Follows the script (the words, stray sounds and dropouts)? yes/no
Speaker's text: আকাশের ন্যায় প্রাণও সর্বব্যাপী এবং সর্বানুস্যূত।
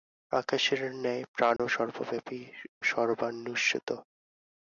no